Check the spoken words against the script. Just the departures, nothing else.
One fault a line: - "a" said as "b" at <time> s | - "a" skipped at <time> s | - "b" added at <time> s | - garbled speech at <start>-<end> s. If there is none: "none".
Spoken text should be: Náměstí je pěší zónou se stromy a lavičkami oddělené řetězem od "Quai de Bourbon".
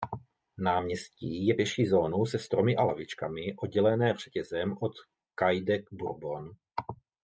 none